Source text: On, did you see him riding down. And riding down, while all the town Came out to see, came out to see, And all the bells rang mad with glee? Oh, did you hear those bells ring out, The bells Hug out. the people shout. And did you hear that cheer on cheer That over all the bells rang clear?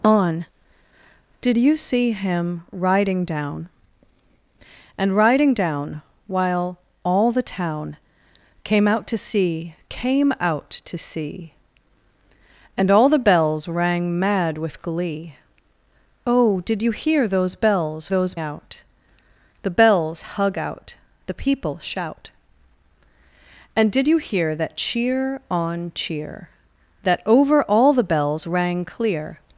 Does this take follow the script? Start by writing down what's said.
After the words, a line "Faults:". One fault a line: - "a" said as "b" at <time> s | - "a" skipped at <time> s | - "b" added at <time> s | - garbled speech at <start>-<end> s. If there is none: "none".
On, did you see him riding down. And riding down, while all the town Came out to see, came out to see, And all the bells rang mad with glee? Oh, did you hear those bells those out, The bells Hug out. the people shout. And did you hear that cheer on cheer That over all the bells rang clear?
Faults:
- "ring" said as "those" at 18.1 s